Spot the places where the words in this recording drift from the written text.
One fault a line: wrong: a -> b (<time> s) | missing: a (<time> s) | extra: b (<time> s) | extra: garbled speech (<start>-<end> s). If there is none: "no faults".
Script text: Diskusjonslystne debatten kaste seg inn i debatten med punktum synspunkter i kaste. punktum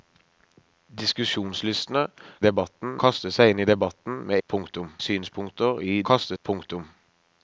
no faults